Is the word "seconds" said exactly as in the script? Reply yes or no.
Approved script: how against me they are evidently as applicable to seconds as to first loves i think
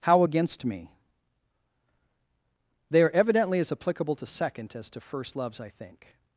no